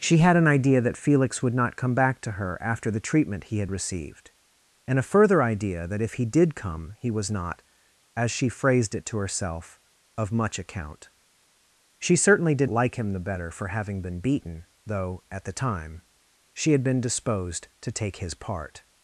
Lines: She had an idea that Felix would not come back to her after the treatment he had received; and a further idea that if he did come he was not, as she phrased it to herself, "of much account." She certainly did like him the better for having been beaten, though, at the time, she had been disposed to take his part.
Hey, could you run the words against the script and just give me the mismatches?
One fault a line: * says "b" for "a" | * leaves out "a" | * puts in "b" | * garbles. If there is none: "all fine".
all fine